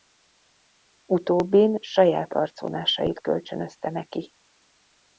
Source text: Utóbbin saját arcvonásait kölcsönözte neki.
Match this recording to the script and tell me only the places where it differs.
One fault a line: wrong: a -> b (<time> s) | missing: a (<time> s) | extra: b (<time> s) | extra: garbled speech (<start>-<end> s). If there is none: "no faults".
no faults